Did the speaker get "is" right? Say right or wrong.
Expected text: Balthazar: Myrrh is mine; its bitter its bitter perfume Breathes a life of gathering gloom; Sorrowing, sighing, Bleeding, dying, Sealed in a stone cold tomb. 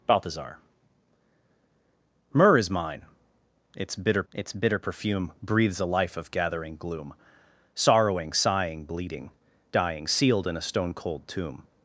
right